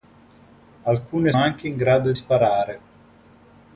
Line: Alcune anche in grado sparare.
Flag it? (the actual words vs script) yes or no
no